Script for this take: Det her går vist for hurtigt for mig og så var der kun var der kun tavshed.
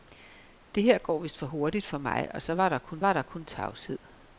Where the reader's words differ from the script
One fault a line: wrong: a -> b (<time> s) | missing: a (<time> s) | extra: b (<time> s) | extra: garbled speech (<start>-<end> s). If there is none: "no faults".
no faults